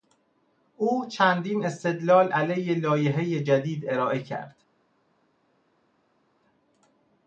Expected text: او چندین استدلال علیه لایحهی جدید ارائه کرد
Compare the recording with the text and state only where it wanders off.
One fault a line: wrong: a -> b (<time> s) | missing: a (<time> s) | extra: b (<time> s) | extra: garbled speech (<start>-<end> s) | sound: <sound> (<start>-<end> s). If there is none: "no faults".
no faults